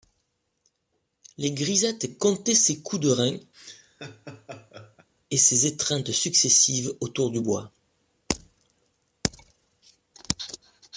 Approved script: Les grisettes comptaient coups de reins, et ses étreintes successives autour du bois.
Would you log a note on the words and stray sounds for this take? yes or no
yes